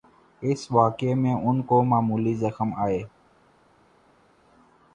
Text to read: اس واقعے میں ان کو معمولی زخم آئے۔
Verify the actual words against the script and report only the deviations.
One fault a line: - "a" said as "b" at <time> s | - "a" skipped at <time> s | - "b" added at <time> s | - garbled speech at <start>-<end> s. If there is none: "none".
none